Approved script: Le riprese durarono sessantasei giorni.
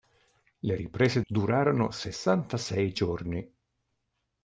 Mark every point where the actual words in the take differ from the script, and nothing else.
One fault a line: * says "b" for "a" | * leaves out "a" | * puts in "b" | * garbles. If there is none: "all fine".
all fine